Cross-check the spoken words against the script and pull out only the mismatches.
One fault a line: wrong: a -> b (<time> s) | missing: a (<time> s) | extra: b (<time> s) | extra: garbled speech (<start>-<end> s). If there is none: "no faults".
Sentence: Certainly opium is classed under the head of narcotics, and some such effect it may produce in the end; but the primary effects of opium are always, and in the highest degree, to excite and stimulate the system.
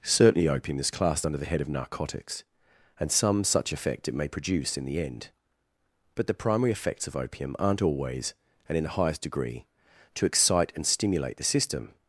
wrong: are -> aren't (7.6 s)